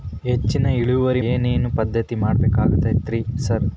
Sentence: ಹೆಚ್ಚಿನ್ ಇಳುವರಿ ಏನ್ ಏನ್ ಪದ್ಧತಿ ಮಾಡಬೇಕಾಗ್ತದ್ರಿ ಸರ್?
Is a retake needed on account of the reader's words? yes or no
no